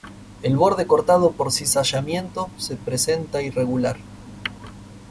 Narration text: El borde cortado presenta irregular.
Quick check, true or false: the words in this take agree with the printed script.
false